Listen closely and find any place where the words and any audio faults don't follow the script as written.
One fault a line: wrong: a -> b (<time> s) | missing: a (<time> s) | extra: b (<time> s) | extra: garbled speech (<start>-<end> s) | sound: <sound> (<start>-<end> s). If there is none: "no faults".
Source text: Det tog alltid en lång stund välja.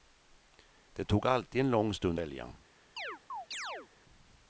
sound: chirp (3.0-3.9 s)